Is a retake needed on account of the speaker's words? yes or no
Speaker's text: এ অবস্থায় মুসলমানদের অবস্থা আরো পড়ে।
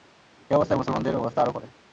no